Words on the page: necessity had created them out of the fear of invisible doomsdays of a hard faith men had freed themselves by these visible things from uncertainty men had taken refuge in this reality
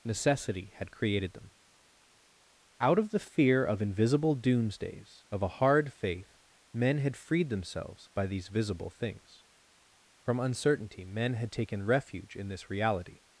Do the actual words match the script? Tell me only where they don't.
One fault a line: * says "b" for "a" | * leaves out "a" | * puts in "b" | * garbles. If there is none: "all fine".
all fine